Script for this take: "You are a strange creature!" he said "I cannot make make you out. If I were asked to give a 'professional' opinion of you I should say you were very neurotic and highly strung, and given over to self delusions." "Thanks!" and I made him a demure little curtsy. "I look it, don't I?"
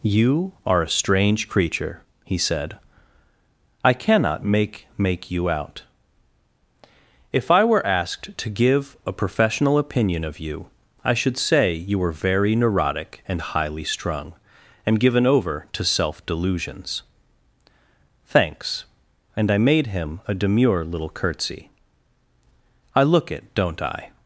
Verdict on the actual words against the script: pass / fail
pass